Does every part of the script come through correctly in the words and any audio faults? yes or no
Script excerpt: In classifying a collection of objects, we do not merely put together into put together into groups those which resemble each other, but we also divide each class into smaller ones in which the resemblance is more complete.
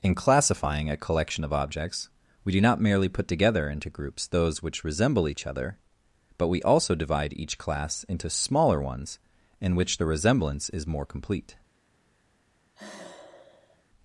no